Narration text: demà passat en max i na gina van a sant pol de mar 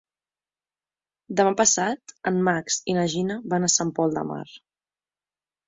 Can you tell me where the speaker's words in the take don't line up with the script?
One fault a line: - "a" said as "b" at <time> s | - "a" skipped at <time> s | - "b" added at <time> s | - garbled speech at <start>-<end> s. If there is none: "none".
none